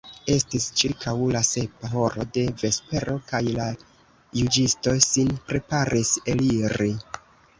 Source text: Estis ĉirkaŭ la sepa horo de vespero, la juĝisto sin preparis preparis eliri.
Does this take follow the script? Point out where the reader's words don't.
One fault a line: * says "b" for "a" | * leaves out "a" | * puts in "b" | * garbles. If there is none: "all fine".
* puts in "kaj"
* leaves out "preparis"